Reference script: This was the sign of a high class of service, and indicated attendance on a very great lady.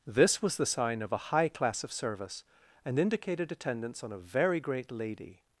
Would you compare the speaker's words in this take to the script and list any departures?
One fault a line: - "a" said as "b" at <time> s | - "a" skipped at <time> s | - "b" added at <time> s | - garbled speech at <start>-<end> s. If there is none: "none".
none